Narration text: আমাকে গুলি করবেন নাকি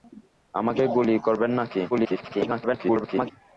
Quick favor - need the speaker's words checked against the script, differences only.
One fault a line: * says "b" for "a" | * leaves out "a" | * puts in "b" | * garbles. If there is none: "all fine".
* garbles